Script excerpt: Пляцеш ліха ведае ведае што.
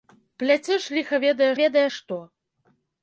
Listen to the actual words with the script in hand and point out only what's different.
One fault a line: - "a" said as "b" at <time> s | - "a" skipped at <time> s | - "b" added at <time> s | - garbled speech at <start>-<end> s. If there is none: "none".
none